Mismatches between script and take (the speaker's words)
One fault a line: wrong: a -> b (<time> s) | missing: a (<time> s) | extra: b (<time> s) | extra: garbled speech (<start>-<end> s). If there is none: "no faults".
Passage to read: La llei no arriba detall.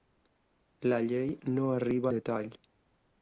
no faults